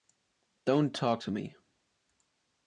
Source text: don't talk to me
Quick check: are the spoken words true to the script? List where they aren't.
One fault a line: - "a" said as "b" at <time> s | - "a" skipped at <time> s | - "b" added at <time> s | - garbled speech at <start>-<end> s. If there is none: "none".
none